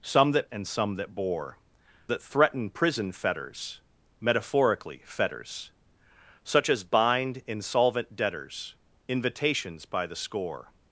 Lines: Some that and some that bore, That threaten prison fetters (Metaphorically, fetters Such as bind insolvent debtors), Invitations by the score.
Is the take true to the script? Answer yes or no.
yes